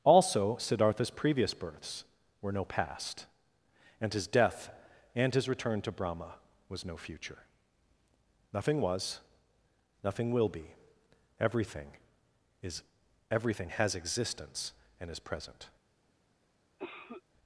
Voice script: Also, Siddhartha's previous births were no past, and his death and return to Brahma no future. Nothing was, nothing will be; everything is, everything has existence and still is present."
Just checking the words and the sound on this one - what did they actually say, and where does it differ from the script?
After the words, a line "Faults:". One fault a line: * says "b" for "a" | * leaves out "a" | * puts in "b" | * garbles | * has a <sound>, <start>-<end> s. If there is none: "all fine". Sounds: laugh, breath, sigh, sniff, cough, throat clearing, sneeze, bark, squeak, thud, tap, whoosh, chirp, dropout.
Also, Siddhartha's previous births were no past, and his death and his return to Brahma was no future. Nothing was, nothing will be; everything is, everything has existence and is present."
Faults:
* puts in "his"
* puts in "was"
* leaves out "still"
* has a cough, 16.8-17.2 s